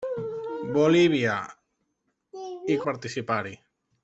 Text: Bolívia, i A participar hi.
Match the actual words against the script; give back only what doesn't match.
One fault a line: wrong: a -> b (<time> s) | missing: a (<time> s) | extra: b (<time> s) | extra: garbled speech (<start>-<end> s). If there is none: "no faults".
no faults